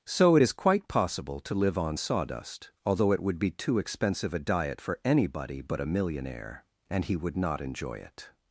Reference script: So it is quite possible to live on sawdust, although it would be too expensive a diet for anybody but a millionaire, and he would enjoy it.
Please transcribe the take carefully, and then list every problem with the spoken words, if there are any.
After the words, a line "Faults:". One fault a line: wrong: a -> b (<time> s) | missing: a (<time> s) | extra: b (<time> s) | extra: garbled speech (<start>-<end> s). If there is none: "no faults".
So it is quite possible to live on sawdust, although it would be too expensive a diet for anybody but a millionaire, and he would not enjoy it.
Faults:
extra: not (7.3 s)